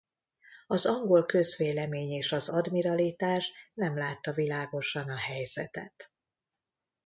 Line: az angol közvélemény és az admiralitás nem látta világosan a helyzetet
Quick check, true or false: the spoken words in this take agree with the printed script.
true